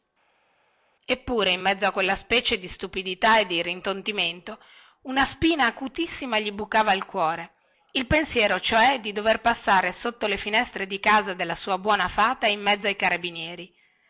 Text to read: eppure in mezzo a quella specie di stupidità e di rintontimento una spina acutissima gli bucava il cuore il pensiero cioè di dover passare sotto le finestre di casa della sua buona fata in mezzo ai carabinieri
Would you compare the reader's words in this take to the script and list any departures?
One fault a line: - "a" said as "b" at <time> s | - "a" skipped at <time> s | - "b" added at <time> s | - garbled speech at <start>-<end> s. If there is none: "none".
none